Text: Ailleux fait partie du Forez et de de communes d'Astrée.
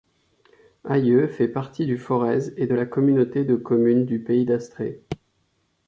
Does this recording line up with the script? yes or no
no